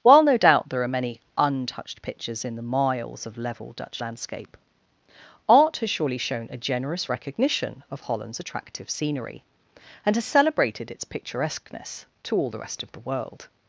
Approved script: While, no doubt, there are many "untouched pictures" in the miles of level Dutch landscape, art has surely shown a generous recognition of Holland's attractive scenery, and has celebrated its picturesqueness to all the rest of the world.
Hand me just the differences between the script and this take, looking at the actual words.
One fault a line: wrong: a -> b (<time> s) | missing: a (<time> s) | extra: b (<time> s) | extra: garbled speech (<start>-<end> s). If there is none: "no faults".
no faults